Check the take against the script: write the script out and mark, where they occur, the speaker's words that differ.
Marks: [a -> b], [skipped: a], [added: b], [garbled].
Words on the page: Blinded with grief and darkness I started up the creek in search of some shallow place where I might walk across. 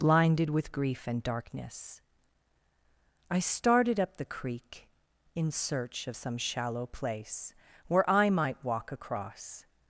Blinded with grief and darkness I started up the creek in search of some shallow place where I might walk across.